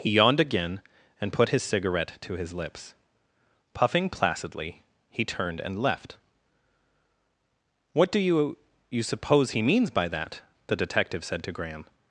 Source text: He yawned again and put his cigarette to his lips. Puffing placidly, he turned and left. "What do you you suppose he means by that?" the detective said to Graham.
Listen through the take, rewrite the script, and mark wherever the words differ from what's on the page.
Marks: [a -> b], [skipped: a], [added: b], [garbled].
He yawned again and put his cigarette to his lips. Puffing placidly, he turned and left. "What do you you suppose he means by that?" the detective said to Graham.